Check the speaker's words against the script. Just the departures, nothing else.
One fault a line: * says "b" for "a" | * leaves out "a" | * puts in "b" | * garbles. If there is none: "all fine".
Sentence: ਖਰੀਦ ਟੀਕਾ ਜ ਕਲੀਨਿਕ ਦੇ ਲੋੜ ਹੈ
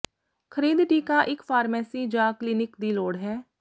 * puts in "ਇੱਕ ਫਾਰਮੇਸੀ"
* says "ਦੀ" for "ਦੇ"